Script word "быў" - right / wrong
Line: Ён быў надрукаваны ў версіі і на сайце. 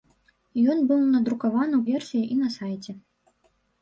right